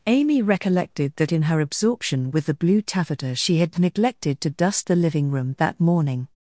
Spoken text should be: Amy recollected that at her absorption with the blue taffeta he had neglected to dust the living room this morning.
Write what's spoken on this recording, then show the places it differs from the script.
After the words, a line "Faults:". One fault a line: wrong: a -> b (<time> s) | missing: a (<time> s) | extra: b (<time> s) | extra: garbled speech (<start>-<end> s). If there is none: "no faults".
Amy recollected that in her absorption with the blue taffeta she had neglected to dust the living room that morning.
Faults:
wrong: at -> in (1.3 s)
wrong: he -> she (3.3 s)
wrong: this -> that (5.6 s)